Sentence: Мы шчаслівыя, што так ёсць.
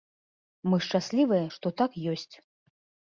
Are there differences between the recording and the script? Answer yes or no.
no